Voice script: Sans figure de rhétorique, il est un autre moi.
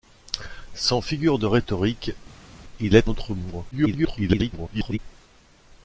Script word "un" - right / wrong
wrong